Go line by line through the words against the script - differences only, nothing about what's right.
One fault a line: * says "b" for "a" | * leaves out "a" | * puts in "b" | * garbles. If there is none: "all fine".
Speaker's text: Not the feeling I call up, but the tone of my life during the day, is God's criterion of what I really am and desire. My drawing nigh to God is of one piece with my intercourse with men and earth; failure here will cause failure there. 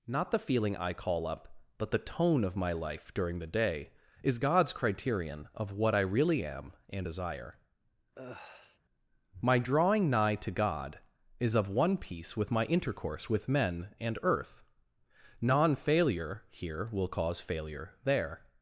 * puts in "non"